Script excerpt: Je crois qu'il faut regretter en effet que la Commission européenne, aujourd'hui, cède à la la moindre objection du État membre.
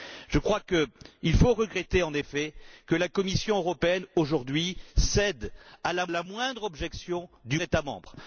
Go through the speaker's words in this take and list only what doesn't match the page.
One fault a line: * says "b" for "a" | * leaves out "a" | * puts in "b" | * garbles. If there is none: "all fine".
all fine